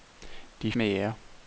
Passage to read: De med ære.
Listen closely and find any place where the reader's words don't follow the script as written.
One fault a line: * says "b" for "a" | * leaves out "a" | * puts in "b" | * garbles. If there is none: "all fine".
all fine